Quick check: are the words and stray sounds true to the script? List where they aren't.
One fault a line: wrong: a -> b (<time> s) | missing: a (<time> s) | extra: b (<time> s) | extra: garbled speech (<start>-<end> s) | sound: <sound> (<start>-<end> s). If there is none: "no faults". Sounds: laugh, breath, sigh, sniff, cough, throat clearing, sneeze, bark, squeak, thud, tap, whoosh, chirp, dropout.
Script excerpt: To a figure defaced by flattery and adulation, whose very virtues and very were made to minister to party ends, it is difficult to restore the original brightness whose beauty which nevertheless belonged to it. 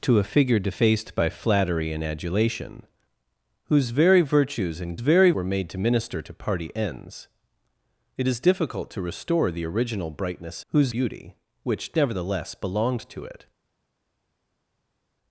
no faults